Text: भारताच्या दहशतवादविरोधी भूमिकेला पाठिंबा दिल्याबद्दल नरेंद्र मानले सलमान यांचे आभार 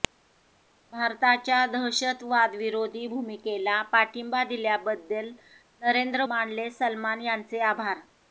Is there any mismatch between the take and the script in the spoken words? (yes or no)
no